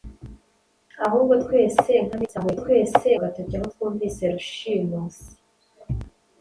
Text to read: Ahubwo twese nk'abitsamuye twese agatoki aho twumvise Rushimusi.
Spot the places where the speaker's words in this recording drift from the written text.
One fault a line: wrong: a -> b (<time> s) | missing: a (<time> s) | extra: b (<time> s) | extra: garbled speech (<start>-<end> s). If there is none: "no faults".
no faults